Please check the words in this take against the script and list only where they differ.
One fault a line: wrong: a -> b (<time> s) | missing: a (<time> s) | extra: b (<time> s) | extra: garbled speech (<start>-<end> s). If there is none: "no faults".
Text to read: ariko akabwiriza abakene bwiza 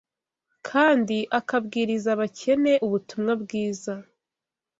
wrong: ariko -> kandi (0.7 s)
extra: ubutumwa (2.9 s)